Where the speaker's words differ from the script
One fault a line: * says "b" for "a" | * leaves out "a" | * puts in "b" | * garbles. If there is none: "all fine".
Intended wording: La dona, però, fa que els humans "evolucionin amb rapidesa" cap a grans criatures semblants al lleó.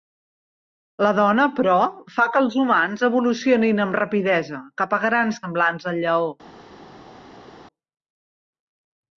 * leaves out "criatures"